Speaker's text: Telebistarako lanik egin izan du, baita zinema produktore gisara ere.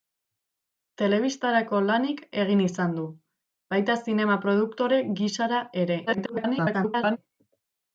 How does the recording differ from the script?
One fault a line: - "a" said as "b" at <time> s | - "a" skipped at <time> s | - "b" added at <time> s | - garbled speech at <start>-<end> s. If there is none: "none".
- garbled speech at 6.1-7.2 s